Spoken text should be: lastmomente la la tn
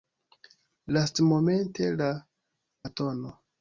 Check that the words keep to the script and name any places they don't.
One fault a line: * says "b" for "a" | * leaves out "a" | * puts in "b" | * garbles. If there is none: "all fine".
all fine